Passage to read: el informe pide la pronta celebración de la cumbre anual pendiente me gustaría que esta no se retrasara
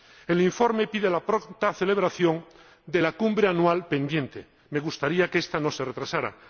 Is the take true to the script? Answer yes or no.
yes